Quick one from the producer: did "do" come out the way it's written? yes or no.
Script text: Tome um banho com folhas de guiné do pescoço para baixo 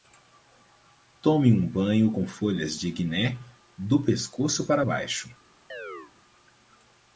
yes